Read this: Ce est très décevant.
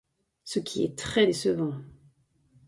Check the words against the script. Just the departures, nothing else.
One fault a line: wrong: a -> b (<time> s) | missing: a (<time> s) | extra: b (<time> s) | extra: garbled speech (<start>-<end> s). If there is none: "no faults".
extra: qui (0.6 s)